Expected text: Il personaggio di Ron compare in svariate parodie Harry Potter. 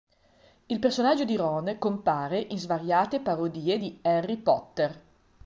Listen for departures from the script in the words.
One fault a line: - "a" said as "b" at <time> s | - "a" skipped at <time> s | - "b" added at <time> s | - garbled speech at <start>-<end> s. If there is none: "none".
- "di" added at 3.8 s